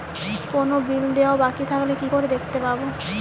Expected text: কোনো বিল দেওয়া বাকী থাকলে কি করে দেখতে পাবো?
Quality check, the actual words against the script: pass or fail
pass